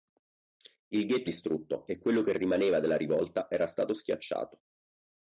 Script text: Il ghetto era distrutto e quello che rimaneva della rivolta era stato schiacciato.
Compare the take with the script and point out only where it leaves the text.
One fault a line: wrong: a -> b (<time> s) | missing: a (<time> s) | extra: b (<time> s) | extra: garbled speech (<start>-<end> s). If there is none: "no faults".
missing: era (1.3 s)